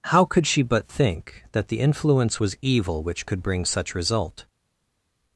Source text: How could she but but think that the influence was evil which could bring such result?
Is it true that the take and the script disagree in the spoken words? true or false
true